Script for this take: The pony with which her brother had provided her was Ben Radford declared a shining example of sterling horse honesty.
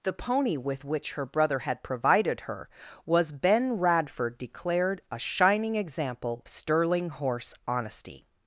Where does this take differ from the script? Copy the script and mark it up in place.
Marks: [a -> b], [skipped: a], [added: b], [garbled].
The pony with which her brother had provided her was Ben Radford declared a shining example [skipped: of] sterling horse honesty.